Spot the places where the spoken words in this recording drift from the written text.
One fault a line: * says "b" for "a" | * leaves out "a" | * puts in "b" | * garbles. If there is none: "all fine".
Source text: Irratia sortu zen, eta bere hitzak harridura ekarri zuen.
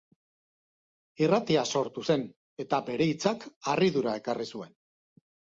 all fine